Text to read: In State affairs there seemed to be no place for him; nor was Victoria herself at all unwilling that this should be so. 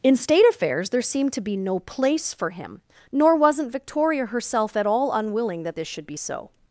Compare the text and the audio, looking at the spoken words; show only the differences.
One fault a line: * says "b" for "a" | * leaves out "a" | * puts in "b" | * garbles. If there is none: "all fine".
* says "wasn't" for "was"